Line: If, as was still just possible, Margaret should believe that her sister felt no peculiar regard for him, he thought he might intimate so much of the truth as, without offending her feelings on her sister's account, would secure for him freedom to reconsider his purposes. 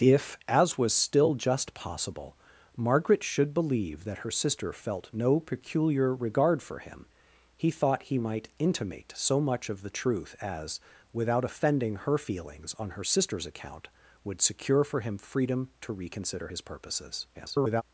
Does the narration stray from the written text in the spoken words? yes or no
yes